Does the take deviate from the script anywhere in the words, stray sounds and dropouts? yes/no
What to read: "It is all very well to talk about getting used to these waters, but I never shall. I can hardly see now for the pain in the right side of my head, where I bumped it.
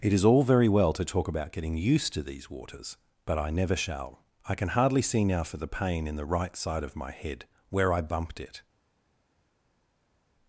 no